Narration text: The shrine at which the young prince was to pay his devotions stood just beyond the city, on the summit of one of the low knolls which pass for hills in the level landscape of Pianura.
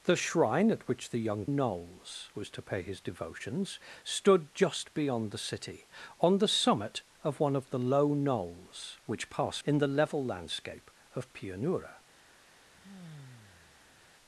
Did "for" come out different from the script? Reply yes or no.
yes